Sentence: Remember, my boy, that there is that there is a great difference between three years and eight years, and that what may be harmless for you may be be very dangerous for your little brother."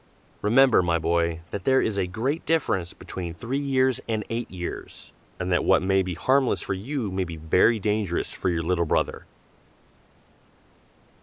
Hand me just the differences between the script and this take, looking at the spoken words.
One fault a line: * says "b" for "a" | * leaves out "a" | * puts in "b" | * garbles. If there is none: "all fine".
* leaves out "that there is"
* leaves out "be"